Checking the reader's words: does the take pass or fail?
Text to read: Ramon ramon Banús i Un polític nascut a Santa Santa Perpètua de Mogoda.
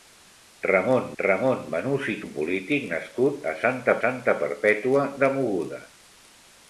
pass